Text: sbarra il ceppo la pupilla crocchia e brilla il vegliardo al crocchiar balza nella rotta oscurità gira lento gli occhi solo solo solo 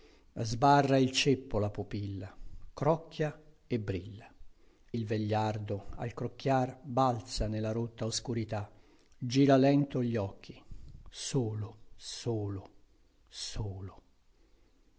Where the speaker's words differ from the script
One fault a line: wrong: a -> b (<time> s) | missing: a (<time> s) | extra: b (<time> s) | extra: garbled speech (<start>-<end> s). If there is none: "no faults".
no faults